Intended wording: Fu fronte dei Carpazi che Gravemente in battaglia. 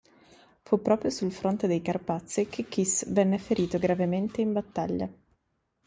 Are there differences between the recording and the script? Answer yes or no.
yes